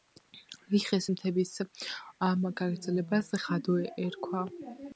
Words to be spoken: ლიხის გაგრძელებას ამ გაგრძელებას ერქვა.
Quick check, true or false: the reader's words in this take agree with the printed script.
false